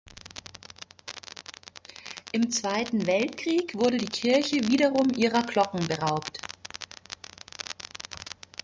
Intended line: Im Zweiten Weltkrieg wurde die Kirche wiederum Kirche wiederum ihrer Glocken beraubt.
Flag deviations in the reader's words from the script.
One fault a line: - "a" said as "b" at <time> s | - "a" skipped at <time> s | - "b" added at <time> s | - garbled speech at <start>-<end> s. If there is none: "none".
- "Kirche wiederum" skipped at 5.1 s